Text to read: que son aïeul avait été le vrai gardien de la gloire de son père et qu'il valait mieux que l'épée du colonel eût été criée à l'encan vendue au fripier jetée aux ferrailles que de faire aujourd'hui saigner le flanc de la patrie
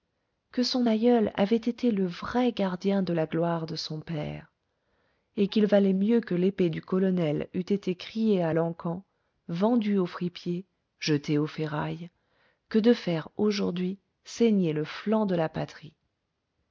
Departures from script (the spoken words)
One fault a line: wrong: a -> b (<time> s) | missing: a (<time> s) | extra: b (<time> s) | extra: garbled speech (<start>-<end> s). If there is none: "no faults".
no faults